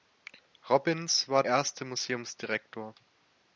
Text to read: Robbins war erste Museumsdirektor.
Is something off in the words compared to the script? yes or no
no